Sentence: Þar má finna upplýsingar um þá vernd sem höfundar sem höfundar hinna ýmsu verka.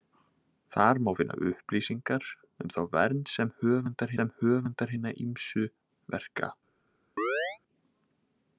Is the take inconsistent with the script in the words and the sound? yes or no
yes